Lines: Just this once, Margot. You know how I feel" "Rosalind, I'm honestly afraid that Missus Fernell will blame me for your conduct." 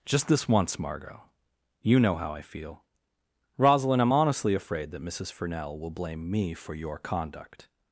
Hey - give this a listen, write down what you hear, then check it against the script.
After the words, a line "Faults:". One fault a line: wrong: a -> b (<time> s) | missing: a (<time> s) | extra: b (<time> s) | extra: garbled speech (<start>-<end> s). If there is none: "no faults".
Just this once, Margot. You know how I feel" "Rosalind, I'm honestly afraid that Missus Fernell will blame me for your conduct."
Faults:
no faults